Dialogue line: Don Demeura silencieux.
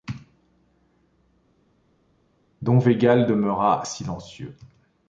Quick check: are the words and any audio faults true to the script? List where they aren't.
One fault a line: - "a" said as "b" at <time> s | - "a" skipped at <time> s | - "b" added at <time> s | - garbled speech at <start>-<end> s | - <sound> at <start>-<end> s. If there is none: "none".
- "Végal" added at 2.8 s